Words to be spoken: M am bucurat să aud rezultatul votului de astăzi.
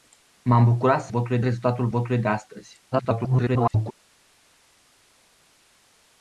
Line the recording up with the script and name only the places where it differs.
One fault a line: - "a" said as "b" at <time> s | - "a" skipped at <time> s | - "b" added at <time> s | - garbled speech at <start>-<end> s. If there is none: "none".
- "aud" said as "votului" at 1.1 s
- garbled speech at 2.9-3.9 s